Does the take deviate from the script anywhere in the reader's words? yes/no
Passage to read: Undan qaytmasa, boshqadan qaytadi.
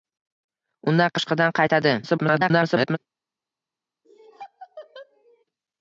yes